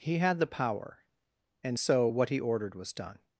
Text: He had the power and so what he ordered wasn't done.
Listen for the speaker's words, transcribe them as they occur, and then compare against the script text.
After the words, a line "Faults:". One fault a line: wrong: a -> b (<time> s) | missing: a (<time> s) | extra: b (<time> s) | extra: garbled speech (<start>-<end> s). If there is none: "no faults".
He had the power and so what he ordered was done.
Faults:
wrong: wasn't -> was (2.7 s)